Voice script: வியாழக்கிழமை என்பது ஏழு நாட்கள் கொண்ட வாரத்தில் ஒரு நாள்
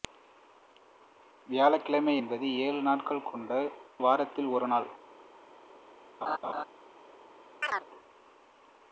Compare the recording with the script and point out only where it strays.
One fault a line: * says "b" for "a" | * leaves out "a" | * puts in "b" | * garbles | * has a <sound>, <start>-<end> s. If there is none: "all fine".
* has a laugh, 6.2-6.6 s
* has a chirp, 7.6-7.9 s